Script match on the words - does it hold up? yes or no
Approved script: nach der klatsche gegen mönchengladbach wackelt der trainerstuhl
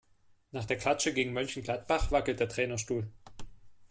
yes